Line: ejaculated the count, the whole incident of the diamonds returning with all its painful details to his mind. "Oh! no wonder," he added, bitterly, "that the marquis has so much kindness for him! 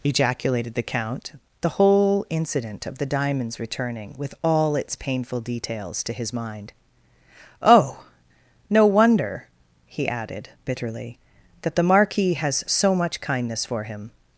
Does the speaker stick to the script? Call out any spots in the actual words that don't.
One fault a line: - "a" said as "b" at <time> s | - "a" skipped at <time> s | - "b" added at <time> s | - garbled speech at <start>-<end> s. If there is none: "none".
none